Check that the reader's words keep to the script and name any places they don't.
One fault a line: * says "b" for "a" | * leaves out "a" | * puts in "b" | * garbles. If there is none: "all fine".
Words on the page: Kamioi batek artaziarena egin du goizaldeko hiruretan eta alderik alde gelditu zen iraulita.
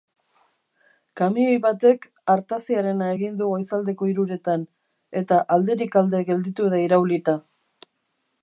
* says "da" for "zen"